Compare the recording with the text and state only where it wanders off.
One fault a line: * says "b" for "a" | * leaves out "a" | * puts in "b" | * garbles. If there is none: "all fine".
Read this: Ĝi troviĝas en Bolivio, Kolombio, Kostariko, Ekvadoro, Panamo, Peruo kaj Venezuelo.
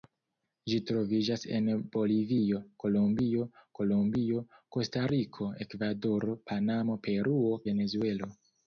* puts in "Kolombio"
* leaves out "kaj"